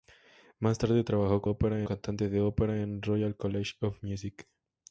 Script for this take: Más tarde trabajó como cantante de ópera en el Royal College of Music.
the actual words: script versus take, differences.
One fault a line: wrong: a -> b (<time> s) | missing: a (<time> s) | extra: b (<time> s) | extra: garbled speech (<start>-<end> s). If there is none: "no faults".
wrong: como -> ópera (1.4 s)